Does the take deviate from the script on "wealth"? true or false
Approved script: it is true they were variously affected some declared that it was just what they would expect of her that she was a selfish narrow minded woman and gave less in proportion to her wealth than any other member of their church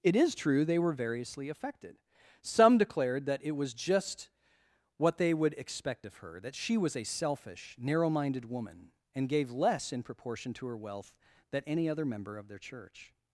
false